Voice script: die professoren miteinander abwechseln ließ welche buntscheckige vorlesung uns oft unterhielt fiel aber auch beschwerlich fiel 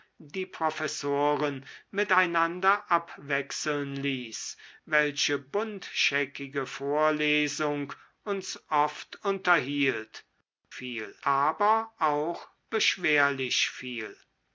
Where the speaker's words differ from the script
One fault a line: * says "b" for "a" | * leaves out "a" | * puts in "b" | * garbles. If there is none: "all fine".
all fine